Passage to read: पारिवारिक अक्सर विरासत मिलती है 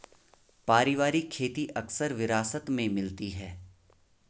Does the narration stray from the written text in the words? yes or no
yes